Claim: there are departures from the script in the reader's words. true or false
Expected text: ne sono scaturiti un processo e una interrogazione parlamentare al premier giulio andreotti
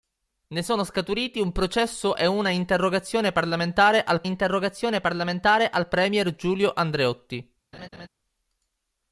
true